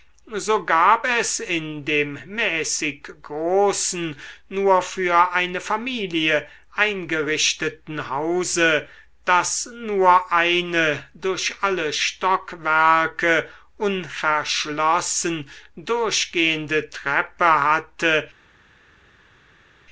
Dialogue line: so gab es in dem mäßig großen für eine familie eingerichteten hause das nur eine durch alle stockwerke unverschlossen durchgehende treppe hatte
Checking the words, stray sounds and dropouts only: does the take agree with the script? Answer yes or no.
no